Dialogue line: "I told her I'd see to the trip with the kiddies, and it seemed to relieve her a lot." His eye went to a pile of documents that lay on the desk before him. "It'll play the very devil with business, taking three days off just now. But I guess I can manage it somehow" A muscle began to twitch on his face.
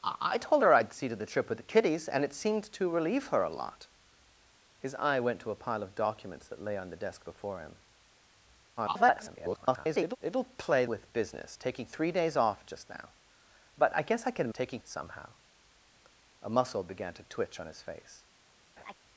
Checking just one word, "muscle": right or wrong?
right